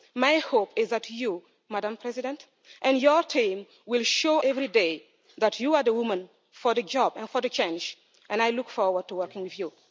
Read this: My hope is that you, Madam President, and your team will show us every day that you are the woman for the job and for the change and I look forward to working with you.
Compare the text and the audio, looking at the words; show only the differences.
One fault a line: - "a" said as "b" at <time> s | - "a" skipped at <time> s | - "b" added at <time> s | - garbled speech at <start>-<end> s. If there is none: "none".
- "us" skipped at 4.4 s